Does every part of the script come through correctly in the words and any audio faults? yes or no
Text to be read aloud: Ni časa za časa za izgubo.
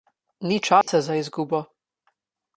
no